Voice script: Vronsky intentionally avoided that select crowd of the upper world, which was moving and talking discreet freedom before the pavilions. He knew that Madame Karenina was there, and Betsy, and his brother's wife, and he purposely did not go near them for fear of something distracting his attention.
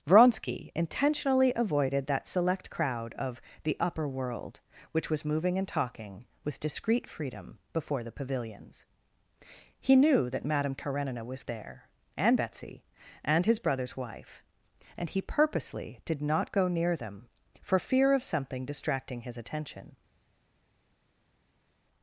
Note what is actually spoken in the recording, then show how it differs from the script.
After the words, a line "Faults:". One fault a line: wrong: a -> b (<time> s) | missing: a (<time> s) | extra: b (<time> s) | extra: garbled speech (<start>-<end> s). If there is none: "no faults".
Vronsky intentionally avoided that select crowd of the upper world, which was moving and talking with discreet freedom before the pavilions. He knew that Madame Karenina was there, and Betsy, and his brother's wife, and he purposely did not go near them for fear of something distracting his attention.
Faults:
extra: with (6.4 s)